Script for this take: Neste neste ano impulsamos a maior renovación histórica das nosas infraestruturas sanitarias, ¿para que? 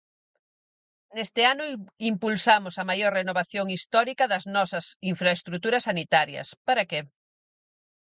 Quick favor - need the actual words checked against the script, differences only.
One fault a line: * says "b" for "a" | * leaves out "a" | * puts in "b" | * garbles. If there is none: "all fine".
* leaves out "neste"